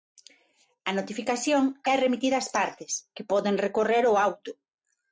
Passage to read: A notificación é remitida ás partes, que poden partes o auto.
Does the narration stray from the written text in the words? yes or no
yes